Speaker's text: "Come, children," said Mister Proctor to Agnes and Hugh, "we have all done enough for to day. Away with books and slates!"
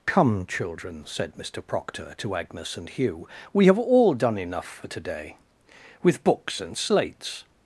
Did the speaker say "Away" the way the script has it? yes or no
no